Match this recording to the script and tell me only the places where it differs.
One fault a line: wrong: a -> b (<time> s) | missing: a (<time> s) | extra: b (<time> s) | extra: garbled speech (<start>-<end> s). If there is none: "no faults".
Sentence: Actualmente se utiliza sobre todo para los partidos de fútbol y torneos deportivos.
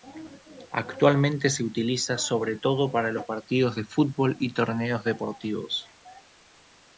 no faults